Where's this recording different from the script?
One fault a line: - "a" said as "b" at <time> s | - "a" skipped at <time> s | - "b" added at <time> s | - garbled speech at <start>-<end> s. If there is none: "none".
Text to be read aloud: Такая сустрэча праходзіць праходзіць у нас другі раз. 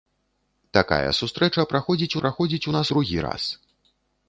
none